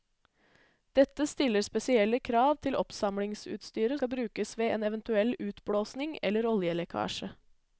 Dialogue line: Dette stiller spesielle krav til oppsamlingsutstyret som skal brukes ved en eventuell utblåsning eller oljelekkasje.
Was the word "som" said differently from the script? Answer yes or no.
yes